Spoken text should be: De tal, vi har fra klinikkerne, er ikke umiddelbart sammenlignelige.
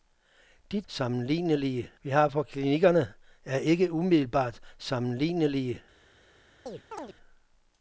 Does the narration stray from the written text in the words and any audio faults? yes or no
yes